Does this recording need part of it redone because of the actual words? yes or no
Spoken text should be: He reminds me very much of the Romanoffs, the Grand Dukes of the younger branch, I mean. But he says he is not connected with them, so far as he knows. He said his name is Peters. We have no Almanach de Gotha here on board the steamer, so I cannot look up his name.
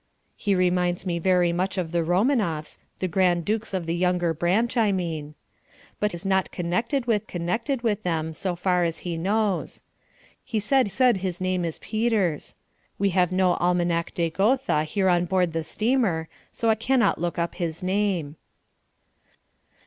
yes